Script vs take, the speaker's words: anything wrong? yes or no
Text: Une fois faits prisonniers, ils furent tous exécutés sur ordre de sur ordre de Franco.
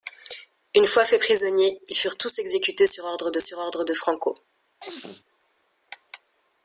no